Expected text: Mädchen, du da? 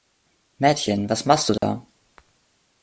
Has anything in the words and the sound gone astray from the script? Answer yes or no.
yes